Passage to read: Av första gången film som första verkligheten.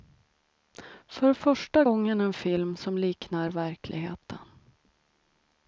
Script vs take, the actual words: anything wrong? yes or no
yes